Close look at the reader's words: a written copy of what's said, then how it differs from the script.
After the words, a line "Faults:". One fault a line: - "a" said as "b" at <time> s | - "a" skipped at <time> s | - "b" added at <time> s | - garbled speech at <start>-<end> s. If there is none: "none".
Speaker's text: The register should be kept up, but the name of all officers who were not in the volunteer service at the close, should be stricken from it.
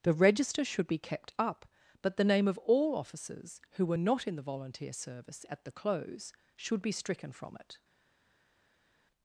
The register should be kept up, but the name of all officers who were not in the volunteer service at the close, should be stricken from it.
Faults:
none